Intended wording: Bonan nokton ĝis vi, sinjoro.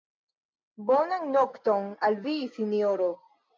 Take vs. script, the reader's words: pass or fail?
fail